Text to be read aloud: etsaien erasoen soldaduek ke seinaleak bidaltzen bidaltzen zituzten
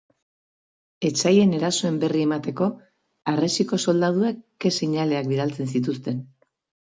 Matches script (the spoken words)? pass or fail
fail